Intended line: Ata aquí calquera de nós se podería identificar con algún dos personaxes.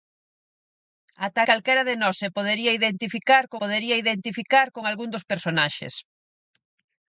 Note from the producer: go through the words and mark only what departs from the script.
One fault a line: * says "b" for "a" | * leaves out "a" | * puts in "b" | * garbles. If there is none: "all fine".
* leaves out "aquí"
* puts in "podería identificar con"